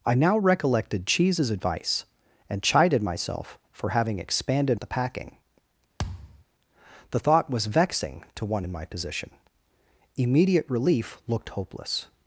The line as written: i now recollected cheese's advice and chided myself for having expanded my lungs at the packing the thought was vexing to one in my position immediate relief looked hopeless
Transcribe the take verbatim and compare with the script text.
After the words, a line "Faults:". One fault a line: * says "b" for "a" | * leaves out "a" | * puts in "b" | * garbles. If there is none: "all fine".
i now recollected cheese's advice and chided myself for having expanded at the packing the thought was vexing to one in my position immediate relief looked hopeless
Faults:
* leaves out "my lungs"